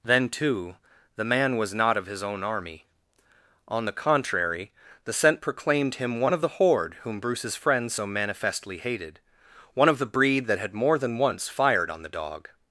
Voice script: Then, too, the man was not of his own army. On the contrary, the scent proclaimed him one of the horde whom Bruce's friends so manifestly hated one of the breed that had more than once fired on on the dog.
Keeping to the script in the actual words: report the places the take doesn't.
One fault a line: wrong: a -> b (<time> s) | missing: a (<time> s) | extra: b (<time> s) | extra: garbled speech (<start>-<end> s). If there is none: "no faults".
missing: on (12.0 s)